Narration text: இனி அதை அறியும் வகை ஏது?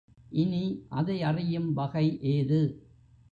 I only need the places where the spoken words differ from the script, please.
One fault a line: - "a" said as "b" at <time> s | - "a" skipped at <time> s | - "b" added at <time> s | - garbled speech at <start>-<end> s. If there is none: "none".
none